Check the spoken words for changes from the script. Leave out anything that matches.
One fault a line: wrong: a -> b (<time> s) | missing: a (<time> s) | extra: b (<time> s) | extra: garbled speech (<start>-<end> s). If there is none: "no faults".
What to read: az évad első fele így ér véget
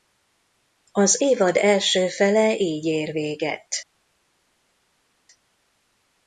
no faults